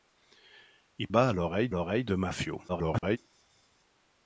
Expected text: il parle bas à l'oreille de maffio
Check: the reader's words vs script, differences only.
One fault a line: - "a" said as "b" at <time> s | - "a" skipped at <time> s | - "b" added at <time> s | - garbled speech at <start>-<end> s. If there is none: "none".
- "parle" skipped at 1.1 s
- "l'oreille" added at 1.7 s
- garbled speech at 2.7-3.2 s